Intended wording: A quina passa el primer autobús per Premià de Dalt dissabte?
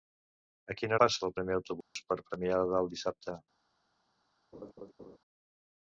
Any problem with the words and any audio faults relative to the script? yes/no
yes